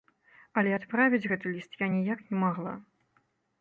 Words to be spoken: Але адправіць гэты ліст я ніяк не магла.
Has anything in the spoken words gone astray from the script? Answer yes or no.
no